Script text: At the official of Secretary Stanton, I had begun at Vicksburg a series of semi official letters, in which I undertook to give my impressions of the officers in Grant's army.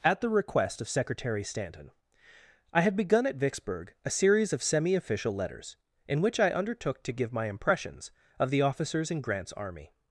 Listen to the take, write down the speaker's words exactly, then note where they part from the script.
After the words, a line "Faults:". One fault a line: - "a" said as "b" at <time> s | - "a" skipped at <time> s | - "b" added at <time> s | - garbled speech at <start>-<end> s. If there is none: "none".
At the request of Secretary Stanton, I had begun at Vicksburg a series of semi official letters, in which I undertook to give my impressions of the officers in Grant's army.
Faults:
- "official" said as "request" at 0.3 s